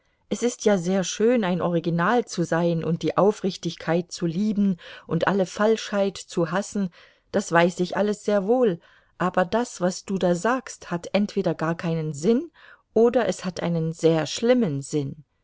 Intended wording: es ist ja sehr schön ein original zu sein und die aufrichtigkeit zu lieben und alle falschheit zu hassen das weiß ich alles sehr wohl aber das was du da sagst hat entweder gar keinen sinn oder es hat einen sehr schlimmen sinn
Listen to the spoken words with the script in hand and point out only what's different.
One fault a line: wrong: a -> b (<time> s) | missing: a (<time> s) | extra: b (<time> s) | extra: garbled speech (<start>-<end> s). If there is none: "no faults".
no faults